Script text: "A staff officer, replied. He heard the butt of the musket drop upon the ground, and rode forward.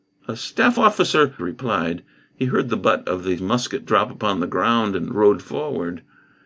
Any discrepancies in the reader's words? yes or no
no